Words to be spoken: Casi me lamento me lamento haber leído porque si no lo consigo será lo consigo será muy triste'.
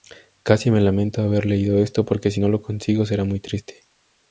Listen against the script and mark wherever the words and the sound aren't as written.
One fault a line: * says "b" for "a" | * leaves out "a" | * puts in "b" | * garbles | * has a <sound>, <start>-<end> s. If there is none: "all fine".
* leaves out "me lamento"
* puts in "esto"
* leaves out "lo consigo será"